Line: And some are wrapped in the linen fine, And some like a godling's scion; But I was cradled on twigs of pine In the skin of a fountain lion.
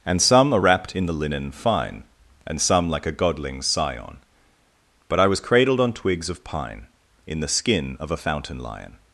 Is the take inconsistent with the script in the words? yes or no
no